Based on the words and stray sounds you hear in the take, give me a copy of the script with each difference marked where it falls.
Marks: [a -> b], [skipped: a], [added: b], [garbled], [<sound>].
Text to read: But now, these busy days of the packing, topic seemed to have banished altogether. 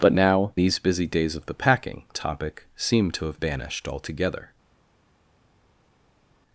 But now, these busy days of the packing, topic seemed to have banished altogether.